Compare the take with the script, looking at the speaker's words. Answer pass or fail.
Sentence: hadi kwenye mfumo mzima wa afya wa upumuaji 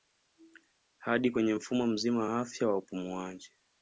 pass